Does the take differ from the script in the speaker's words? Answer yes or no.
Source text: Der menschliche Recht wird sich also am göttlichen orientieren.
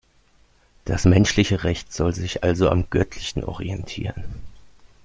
yes